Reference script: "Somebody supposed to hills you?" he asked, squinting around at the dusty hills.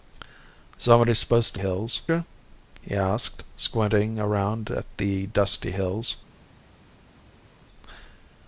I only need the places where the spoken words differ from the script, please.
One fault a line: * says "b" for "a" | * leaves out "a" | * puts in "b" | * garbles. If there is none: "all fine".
all fine